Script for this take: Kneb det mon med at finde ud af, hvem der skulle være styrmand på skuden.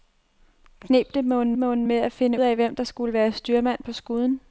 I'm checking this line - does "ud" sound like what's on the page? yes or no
no